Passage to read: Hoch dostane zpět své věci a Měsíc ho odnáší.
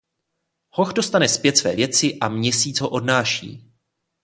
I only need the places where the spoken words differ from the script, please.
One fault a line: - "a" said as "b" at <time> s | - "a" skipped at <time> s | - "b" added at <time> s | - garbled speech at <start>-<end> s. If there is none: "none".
none